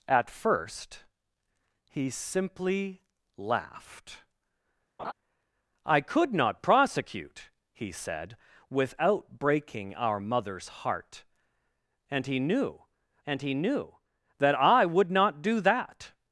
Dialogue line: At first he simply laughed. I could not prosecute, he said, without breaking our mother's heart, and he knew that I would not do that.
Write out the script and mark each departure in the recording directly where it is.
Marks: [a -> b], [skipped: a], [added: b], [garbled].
At first he simply laughed. I could not prosecute, he said, without breaking our mother's heart, and he knew [added: and he knew] that I would not do that.